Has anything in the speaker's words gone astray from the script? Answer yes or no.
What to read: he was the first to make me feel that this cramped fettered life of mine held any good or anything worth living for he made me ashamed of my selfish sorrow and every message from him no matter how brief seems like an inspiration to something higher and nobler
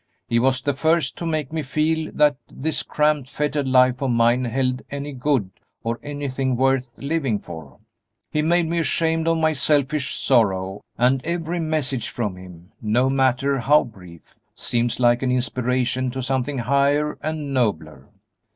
no